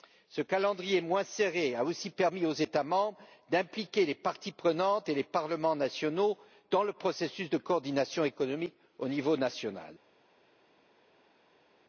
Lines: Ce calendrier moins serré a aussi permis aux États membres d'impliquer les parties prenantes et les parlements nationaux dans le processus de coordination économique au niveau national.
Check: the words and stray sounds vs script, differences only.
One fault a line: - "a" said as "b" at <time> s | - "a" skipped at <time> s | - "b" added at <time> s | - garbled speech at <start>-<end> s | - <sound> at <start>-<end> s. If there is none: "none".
none